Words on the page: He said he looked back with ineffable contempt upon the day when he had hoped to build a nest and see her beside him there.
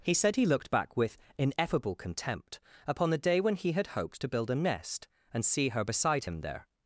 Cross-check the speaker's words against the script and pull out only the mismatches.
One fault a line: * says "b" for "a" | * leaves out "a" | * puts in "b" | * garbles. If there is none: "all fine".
all fine